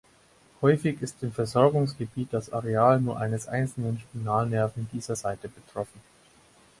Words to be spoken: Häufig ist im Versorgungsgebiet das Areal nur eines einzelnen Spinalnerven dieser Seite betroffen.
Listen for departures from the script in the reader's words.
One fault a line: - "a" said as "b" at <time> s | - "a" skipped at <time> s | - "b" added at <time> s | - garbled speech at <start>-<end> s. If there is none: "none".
none